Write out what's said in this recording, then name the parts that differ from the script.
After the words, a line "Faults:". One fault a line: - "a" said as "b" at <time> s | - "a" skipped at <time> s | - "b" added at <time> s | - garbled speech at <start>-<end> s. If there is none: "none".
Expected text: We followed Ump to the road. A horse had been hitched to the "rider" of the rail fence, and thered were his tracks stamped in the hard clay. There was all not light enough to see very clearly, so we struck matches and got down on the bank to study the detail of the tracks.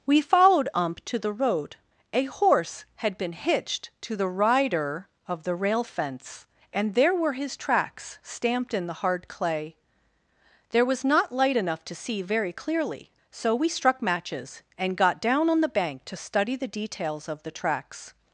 We followed Ump to the road. A horse had been hitched to the "rider" of the rail fence, and there were his tracks stamped in the hard clay. There was not light enough to see very clearly, so we struck matches and got down on the bank to study the details of the tracks.
Faults:
- "thered" said as "there" at 7.0 s
- "all" skipped at 11.0 s
- "detail" said as "details" at 16.7 s